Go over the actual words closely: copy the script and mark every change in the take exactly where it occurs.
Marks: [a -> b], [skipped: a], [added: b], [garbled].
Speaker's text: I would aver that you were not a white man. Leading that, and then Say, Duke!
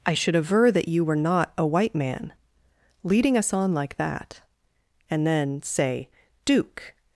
I [would -> should] aver that you were not a white man. Leading [added: us on like] that, and then Say, Duke!